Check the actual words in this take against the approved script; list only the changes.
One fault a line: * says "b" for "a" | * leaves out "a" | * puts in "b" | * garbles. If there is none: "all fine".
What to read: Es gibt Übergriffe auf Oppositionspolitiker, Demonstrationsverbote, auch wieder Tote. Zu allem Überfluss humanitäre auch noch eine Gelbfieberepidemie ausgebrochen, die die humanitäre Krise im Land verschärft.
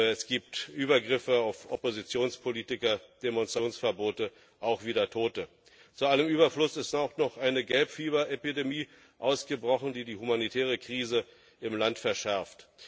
* says "ist" for "humanitäre"